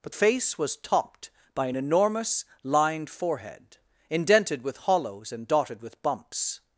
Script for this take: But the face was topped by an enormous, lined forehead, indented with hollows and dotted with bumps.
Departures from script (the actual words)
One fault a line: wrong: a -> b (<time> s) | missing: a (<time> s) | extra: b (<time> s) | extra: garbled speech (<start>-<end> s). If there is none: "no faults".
missing: the (0.1 s)